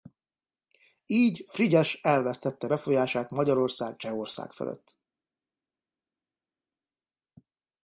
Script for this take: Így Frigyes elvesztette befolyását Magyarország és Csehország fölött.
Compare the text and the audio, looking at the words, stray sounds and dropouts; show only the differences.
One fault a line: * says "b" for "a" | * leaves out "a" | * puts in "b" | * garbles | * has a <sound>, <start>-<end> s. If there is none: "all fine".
* leaves out "és"